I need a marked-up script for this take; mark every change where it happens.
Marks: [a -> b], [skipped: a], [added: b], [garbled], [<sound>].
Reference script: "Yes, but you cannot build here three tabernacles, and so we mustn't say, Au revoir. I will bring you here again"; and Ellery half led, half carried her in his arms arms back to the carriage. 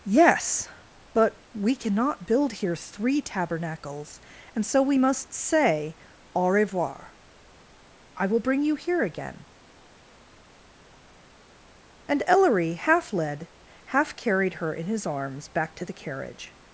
"Yes, but [you -> we] cannot build here three tabernacles, and so we [mustn't -> must] say, Au revoir. I will bring you here again"; and Ellery half led, half carried her in his arms [skipped: arms] back to the carriage.